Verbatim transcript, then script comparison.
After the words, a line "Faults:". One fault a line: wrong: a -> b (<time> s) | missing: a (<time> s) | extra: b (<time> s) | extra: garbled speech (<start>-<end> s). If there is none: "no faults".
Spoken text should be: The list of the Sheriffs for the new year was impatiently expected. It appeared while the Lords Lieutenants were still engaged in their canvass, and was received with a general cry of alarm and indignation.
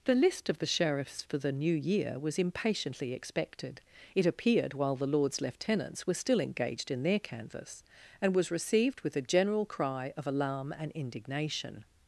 The list of the Sheriffs for the new year was impatiently expected. It appeared while the Lords Lieutenants were still engaged in their canvass, and was received with a general cry of alarm and indignation.
Faults:
no faults